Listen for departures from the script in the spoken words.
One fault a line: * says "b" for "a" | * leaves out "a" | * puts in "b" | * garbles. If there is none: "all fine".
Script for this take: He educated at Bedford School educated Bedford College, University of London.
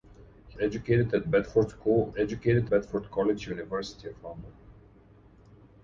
all fine